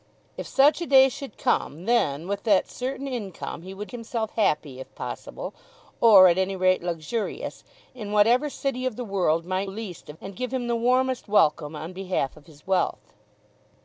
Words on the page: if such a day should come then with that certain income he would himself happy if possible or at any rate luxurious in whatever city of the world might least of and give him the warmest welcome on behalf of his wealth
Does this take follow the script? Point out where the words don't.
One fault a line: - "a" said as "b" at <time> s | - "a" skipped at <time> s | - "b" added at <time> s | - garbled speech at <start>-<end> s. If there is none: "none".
none